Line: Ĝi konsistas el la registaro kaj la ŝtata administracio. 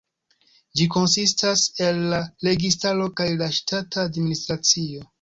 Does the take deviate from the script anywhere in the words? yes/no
no